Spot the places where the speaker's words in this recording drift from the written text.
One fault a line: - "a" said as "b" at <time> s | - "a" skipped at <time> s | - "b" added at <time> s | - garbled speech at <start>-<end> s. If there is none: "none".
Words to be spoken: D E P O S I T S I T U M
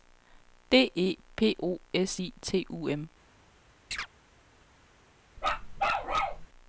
- "S I T" skipped at 2.7 s